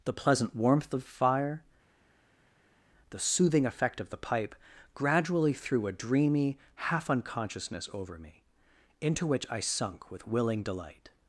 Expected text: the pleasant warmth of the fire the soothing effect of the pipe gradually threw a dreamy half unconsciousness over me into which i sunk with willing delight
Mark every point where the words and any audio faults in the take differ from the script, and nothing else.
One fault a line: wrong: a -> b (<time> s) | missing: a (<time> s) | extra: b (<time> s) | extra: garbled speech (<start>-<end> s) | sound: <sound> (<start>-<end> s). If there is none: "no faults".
missing: the (1.0 s)